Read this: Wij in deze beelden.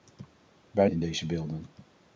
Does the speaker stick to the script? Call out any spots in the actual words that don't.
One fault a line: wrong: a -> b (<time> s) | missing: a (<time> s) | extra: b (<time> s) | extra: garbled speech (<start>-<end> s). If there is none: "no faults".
no faults